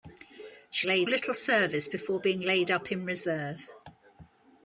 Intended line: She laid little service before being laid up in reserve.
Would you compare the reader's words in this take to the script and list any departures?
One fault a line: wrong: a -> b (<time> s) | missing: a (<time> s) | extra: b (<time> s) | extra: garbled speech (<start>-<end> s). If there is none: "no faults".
no faults